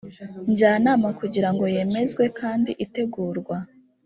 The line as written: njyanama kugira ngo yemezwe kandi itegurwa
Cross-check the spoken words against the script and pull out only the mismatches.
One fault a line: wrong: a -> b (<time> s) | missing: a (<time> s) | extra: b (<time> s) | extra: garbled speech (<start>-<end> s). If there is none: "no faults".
no faults